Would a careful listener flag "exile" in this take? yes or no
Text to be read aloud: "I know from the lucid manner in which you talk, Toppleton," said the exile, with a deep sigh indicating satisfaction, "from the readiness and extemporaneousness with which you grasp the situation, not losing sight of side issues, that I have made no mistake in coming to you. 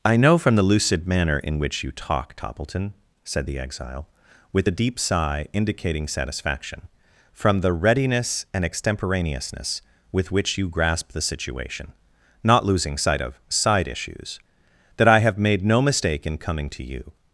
no